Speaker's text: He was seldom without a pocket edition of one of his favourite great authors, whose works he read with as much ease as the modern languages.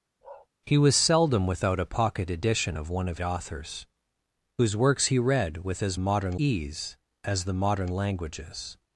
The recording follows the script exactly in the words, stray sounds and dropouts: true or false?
false